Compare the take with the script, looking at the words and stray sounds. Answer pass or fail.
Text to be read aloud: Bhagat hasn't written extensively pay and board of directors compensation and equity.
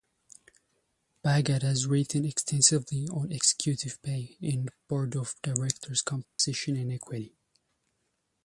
fail